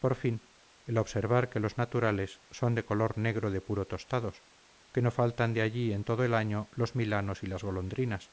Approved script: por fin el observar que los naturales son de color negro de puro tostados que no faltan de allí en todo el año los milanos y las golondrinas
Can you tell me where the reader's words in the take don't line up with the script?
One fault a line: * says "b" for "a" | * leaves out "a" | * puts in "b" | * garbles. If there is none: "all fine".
all fine